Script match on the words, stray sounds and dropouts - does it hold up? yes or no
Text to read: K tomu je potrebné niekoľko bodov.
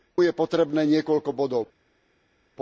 no